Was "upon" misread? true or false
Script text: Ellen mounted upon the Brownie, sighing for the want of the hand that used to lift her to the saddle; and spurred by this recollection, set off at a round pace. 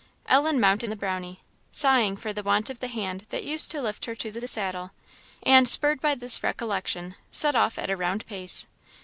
true